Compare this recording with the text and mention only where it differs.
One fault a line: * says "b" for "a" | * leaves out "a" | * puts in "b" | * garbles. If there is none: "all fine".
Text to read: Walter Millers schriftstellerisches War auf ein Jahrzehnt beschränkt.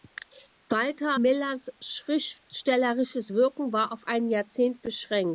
* puts in "Wirken"